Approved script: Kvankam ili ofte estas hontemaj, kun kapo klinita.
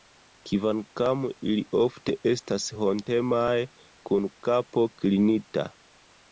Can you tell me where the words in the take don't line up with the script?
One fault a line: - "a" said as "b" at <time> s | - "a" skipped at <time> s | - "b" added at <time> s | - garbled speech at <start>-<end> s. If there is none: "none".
none